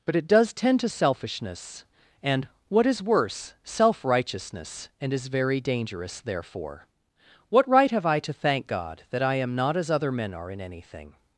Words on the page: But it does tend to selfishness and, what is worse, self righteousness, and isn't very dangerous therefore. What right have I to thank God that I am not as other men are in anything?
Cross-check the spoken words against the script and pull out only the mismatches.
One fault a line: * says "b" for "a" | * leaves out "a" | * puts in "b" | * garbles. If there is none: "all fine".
* says "is" for "isn't"